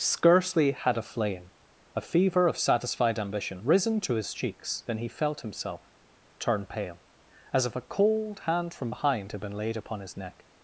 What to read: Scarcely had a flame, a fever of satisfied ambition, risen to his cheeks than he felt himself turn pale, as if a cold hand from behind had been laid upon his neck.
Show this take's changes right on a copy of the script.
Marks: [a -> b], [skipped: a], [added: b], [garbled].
Scarcely had a flame, a fever of satisfied ambition, risen to his cheeks than he felt himself turn pale, as if a cold hand from behind had been laid upon his neck.